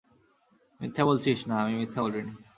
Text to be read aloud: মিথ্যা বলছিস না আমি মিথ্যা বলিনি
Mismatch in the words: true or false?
false